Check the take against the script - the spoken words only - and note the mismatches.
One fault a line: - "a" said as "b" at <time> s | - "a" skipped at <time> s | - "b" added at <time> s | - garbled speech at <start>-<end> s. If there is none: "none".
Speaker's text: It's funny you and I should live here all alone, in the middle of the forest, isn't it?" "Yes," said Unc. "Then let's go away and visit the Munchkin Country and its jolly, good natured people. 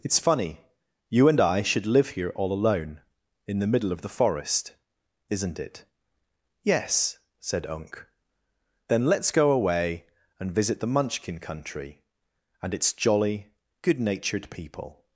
none